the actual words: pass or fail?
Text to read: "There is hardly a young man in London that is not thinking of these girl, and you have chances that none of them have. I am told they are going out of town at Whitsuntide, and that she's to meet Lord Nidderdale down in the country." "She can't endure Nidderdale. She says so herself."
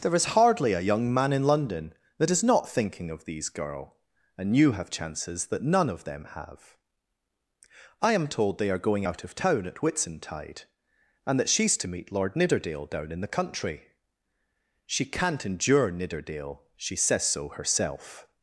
pass